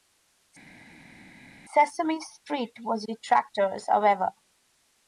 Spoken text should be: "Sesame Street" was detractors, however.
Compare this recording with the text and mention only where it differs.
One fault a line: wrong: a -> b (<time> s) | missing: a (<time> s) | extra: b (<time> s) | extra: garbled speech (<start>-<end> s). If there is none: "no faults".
no faults